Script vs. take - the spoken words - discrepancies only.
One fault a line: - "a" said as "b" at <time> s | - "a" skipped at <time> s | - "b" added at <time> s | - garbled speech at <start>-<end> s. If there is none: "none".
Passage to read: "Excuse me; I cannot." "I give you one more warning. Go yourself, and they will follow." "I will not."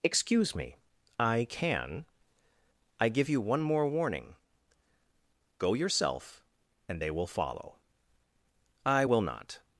- "cannot" said as "can" at 1.5 s